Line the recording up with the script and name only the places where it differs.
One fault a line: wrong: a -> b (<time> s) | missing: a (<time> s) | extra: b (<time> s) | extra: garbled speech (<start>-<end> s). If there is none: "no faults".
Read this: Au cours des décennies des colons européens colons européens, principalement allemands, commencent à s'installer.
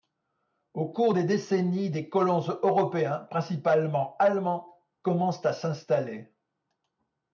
missing: colons européens (3.3 s)